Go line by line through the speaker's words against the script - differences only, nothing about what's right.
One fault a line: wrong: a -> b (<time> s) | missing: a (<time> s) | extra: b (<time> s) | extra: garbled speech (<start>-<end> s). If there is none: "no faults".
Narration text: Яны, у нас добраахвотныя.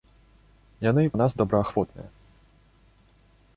no faults